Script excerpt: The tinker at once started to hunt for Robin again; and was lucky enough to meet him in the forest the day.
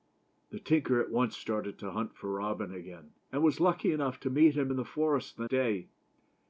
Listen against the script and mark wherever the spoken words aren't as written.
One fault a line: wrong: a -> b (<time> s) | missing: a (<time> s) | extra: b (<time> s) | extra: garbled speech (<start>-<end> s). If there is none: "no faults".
no faults